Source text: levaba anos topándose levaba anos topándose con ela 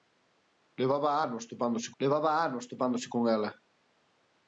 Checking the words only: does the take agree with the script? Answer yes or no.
yes